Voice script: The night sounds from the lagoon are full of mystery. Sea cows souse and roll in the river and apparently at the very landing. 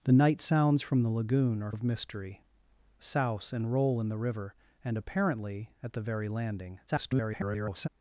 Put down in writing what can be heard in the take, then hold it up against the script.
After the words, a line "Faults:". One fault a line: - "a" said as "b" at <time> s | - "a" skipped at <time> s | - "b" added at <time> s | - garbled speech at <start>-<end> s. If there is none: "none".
The night sounds from the lagoon are of mystery. Souse and roll in the river and apparently at the very landing. [garbled]
Faults:
- "full" skipped at 1.7 s
- "Sea cows" skipped at 2.4 s
- garbled speech at 6.9-7.9 s